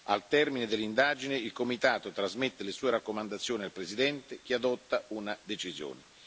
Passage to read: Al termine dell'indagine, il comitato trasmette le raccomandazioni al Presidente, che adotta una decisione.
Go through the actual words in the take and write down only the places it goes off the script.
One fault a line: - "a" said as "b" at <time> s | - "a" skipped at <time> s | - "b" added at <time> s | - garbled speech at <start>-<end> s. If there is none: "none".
- "sue" added at 2.7 s